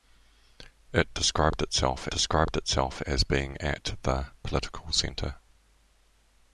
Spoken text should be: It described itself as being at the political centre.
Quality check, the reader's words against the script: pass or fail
fail